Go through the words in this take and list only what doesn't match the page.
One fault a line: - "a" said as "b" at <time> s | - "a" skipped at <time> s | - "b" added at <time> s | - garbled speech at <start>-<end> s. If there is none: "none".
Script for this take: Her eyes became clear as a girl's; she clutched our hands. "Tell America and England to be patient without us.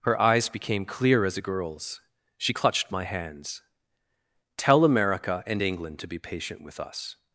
- "our" said as "my" at 2.9 s
- "without" said as "with" at 6.6 s